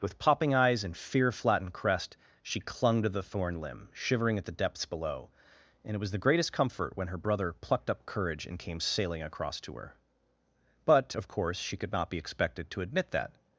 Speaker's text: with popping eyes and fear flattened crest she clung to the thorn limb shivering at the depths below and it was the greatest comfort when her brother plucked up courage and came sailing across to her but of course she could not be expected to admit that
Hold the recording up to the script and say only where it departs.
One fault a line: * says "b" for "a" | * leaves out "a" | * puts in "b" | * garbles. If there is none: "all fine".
all fine